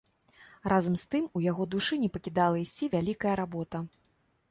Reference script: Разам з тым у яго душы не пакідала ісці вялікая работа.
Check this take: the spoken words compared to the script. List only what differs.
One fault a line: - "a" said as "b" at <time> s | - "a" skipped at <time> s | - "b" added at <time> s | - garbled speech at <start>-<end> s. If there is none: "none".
none